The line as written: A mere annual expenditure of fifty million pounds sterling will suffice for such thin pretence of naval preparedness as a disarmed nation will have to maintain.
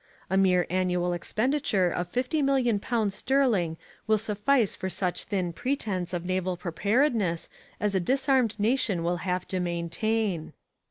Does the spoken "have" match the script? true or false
true